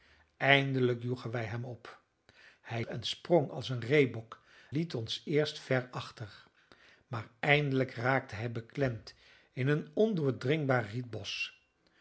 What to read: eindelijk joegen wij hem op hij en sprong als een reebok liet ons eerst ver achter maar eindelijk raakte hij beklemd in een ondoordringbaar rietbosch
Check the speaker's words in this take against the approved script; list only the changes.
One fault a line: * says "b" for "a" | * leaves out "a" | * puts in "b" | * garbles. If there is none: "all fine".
all fine